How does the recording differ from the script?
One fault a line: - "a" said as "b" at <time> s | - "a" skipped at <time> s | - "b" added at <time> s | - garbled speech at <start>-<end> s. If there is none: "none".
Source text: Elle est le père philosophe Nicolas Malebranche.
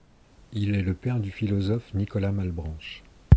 - "Elle" said as "Il" at 0.5 s
- "du" added at 1.2 s